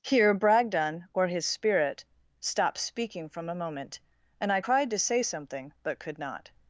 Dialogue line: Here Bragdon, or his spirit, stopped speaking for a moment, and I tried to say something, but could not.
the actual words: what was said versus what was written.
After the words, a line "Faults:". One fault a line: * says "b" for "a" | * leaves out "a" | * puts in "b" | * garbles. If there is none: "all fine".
Here Bragdon, or his spirit, stopped speaking from a moment, and I cried to say something, but could not.
Faults:
* says "from" for "for"
* says "cried" for "tried"